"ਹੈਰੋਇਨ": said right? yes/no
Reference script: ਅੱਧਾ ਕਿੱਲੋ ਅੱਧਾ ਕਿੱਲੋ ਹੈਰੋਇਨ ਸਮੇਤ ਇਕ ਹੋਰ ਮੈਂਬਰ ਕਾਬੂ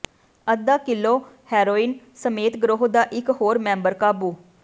no